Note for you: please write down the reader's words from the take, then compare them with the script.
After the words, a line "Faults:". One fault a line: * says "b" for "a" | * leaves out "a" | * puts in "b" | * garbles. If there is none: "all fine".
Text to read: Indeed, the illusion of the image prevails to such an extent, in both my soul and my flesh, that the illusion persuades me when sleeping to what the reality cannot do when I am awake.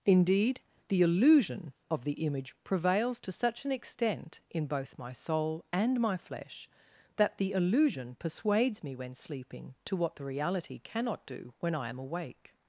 Indeed, the illusion of the image prevails to such an extent, in both my soul and my flesh, that the illusion persuades me when sleeping to what the reality cannot do when I am awake.
Faults:
all fine